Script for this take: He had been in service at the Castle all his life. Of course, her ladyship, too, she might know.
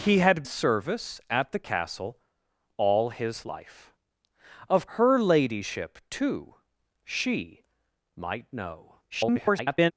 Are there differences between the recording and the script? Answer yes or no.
yes